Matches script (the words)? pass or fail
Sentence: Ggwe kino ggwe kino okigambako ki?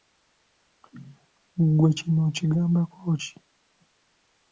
fail